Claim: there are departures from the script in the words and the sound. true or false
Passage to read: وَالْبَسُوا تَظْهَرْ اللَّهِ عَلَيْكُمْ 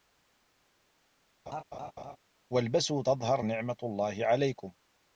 true